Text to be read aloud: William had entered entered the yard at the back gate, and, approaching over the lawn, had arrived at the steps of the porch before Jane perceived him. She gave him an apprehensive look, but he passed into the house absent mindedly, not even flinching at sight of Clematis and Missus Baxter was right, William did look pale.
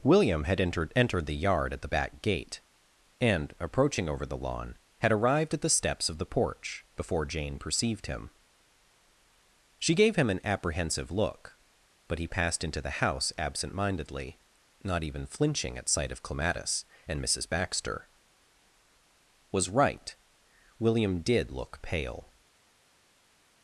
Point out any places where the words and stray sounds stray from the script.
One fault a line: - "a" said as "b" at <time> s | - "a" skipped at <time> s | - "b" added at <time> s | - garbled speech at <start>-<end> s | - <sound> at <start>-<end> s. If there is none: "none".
none